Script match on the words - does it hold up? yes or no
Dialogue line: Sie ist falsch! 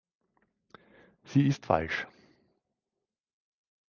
yes